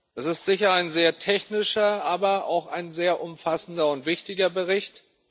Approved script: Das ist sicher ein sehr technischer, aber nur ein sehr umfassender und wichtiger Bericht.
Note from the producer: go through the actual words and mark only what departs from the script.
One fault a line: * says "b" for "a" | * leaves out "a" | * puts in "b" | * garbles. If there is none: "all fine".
* says "auch" for "nur"